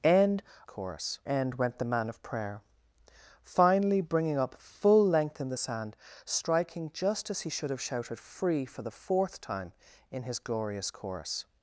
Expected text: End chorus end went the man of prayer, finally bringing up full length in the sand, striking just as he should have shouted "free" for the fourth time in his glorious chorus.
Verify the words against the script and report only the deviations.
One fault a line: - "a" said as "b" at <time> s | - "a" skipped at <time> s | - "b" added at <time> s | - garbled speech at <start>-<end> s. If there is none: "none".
none